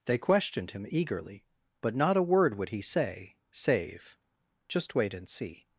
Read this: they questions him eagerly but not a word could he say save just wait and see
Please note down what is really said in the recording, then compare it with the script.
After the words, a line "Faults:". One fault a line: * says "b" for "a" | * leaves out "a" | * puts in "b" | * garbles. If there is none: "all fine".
they questioned him eagerly but not a word would he say save just wait and see
Faults:
* says "questioned" for "questions"
* says "would" for "could"